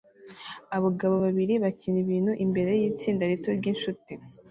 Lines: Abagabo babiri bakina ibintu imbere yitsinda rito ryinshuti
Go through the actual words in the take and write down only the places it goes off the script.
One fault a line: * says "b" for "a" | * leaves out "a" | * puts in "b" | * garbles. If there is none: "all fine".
all fine